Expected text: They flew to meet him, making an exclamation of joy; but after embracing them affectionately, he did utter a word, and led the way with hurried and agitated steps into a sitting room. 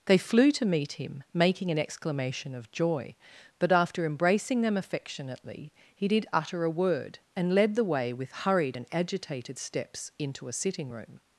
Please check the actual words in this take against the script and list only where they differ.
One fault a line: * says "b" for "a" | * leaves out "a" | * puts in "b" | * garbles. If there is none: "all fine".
all fine